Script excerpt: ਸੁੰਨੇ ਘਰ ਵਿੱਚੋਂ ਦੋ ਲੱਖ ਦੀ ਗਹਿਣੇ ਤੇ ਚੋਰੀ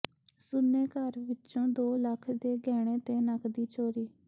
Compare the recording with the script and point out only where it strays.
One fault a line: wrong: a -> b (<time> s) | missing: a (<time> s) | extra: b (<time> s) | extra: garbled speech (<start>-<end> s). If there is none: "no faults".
wrong: ਦੀ -> ਦੇ (2.3 s)
extra: ਨਕਦੀ (3.2 s)